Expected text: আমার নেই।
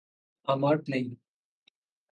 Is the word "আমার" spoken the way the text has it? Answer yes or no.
yes